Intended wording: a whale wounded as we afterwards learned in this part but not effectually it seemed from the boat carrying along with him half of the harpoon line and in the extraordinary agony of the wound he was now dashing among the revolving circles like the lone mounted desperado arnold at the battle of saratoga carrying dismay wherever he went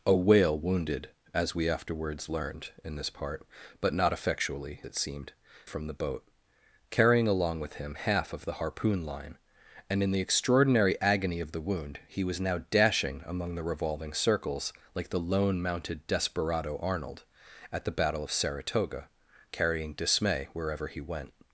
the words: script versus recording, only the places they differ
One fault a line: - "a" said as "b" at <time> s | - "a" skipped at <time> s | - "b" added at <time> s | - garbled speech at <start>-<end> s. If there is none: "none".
none